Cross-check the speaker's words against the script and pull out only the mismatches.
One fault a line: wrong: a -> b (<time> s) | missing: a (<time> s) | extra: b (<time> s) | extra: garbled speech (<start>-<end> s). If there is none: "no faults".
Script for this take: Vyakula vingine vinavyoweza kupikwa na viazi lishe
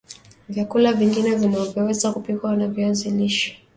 no faults